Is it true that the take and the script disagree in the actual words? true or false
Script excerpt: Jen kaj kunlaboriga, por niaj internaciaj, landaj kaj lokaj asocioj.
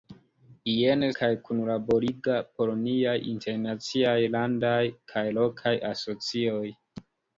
false